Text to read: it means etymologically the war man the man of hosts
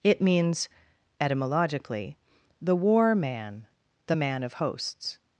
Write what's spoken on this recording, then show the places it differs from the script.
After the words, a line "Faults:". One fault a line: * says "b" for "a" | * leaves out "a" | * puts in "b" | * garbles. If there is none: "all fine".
it means etymologically the war man the man of hosts
Faults:
all fine